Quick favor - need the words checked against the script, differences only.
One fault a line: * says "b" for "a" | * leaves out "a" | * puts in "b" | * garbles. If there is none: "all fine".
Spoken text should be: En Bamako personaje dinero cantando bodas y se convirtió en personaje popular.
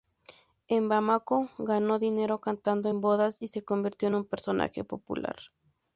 * says "ganó" for "personaje"
* puts in "en"
* puts in "un"